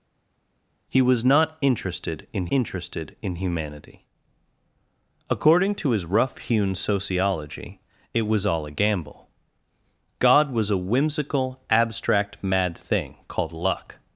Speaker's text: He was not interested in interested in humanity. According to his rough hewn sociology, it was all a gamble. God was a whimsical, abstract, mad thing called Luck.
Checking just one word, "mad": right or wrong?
right